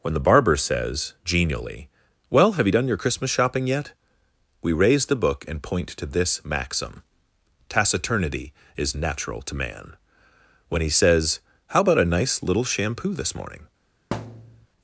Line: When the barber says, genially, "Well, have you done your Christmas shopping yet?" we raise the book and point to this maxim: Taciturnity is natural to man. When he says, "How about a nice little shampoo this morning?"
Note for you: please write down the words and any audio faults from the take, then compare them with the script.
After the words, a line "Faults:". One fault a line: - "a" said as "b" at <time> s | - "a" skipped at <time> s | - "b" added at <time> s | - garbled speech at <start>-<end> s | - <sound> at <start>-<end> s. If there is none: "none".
When the barber says, genially, "Well, have you done your Christmas shopping yet?" we raise the book and point to this maxim: Taciturnity is natural to man. When he says, "How about a nice little shampoo this morning?"
Faults:
- thud at 14.1-14.7 s